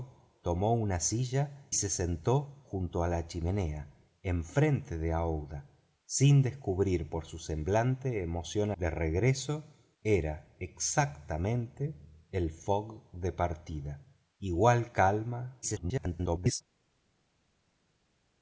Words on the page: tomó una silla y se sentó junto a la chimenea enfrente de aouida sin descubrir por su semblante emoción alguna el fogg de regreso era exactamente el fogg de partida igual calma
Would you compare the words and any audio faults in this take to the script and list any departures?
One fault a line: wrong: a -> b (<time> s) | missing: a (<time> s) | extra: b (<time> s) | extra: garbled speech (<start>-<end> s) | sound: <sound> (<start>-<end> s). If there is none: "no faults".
missing: y (1.7 s)
missing: alguna el fogg (8.7 s)
extra: garbled speech (15.6-16.6 s)